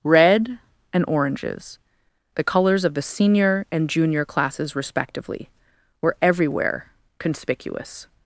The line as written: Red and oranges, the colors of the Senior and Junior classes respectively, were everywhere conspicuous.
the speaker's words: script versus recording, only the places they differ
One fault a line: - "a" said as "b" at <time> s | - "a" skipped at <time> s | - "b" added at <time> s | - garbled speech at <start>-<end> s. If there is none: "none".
none